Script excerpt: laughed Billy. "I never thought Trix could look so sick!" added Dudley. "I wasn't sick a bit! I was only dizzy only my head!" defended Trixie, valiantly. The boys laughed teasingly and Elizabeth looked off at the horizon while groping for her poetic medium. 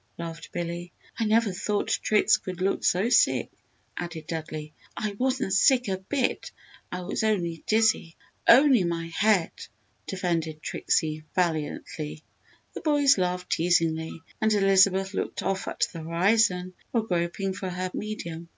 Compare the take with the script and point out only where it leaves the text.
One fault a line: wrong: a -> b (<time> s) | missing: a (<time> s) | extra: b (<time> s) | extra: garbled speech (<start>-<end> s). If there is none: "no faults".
missing: poetic (17.9 s)